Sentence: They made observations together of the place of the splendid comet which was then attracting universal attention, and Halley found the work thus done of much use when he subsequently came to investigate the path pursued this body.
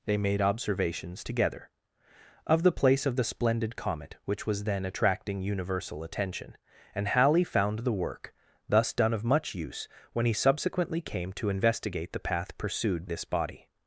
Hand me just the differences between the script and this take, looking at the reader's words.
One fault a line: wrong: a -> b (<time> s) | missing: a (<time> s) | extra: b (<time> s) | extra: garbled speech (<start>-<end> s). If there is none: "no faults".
no faults